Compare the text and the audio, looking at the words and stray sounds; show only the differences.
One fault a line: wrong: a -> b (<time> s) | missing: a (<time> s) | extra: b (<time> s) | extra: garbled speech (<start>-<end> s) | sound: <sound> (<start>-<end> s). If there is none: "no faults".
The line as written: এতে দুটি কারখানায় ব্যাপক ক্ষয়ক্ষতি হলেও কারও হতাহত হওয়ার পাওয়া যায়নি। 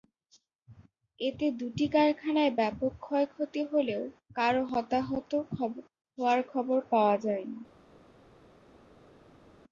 extra: খবর (6.5 s)